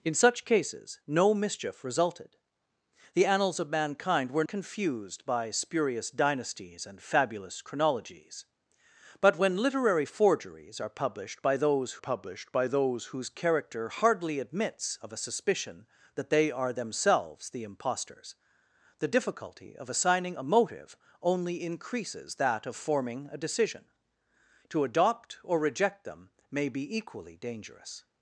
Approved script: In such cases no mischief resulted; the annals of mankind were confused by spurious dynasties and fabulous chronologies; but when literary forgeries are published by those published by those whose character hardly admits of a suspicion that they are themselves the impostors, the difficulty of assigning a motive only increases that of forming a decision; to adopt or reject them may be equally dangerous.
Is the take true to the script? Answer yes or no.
yes